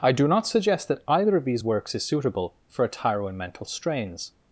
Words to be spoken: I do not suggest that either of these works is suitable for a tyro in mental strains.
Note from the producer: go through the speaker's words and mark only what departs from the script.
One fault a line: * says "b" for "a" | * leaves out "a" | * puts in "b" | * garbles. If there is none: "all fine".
all fine